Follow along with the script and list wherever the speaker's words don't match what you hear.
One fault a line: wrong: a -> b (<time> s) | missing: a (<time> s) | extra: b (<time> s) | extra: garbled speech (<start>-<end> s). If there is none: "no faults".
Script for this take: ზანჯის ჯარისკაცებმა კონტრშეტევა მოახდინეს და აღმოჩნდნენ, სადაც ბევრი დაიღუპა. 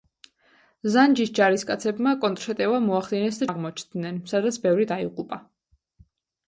no faults